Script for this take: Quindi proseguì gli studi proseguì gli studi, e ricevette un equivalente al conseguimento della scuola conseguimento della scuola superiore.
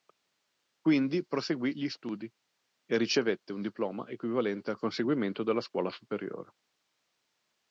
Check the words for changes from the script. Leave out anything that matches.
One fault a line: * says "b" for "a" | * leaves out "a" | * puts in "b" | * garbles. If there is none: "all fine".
* leaves out "proseguì gli studi"
* puts in "diploma"
* leaves out "conseguimento della scuola"